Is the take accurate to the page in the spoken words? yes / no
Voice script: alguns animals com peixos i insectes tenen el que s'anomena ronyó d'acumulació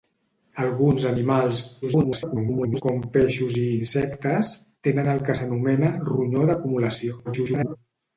no